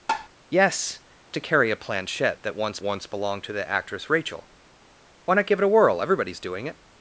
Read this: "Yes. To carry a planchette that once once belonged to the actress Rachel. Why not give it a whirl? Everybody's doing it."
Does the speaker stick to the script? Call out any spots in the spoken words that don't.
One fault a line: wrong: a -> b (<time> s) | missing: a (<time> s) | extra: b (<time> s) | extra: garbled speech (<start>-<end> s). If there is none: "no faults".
no faults